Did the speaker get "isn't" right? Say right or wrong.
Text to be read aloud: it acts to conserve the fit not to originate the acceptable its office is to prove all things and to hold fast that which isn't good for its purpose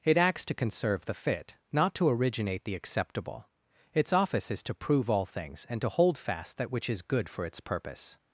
wrong